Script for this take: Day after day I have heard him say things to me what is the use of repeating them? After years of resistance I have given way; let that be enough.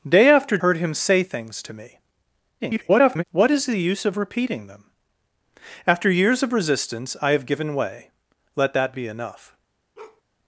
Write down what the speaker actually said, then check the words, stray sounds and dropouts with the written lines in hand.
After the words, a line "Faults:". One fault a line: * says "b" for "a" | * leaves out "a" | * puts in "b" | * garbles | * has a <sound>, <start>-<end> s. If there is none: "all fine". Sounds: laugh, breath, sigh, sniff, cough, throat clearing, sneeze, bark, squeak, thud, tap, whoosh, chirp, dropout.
Day after heard him say things to me [garbled] what is the use of repeating them? After years of resistance I have given way; let that be enough.
Faults:
* leaves out "day I have"
* garbles
* has a bark, 10.0-10.2 s